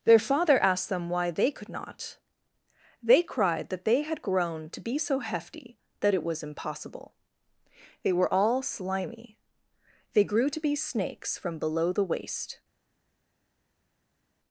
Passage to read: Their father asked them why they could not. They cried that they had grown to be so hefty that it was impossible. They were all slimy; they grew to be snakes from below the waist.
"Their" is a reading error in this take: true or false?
false